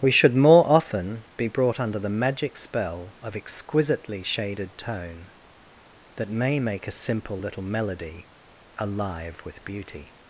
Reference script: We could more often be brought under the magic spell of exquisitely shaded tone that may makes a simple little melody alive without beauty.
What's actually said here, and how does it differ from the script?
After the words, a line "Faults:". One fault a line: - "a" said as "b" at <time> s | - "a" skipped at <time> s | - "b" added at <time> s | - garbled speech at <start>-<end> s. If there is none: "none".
We should more often be brought under the magic spell of exquisitely shaded tone that may make a simple little melody alive with beauty.
Faults:
- "could" said as "should" at 0.1 s
- "makes" said as "make" at 6.6 s
- "without" said as "with" at 9.5 s